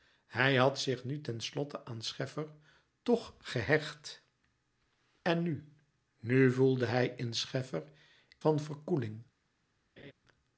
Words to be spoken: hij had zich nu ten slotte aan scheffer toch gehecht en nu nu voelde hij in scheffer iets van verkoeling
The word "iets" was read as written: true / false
false